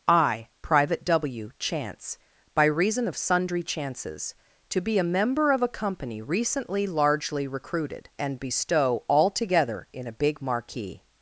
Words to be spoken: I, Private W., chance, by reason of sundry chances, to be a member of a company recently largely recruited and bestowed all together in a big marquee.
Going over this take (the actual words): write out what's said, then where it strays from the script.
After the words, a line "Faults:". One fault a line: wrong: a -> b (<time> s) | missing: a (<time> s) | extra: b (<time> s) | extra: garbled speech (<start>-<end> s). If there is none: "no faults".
I, Private W., chance, by reason of sundry chances, to be a member of a company recently largely recruited and bestow all together in a big marquee.
Faults:
wrong: bestowed -> bestow (8.4 s)